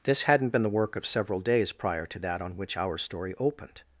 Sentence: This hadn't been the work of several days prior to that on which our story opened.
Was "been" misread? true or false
false